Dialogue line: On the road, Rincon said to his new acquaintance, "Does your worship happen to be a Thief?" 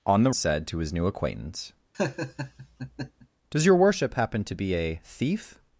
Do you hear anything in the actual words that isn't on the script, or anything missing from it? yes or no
yes